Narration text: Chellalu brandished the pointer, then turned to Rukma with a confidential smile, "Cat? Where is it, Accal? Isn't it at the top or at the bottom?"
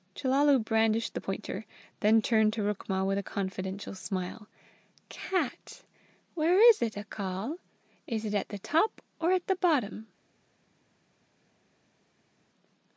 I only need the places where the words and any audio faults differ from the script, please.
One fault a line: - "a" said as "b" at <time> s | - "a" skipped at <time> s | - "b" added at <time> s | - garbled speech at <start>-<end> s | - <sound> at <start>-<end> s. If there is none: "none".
- "Isn't" said as "Is" at 8.1 s